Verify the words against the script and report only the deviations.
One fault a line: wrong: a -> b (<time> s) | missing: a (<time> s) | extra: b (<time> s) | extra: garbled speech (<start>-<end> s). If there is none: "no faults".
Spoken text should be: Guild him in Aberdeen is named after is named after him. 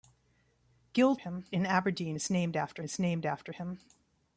no faults